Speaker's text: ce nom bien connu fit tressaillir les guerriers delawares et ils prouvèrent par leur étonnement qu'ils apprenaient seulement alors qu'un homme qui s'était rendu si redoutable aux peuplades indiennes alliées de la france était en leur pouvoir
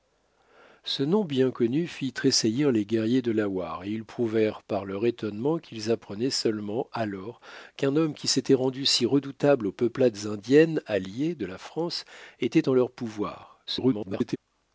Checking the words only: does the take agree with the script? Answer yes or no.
no